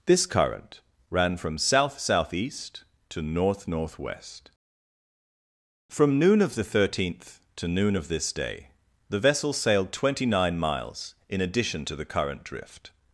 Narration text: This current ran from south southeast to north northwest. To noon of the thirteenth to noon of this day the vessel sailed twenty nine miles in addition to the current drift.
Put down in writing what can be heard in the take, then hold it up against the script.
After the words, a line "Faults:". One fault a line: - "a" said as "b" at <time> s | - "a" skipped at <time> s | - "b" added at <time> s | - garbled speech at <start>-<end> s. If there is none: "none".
This current ran from south southeast to north northwest. From noon of the thirteenth to noon of this day the vessel sailed twenty nine miles in addition to the current drift.
Faults:
- "To" said as "From" at 5.9 s